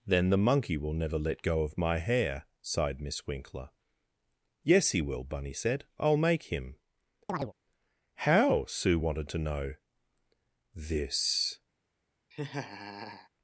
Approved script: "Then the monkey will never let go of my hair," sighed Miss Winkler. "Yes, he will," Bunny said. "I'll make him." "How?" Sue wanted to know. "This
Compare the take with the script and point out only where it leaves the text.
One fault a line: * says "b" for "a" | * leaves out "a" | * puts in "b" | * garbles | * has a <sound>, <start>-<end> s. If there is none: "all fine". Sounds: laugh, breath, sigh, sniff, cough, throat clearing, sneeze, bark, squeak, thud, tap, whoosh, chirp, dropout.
* has a chirp, 7.3-7.5 s
* has a laugh, 12.3-13.3 s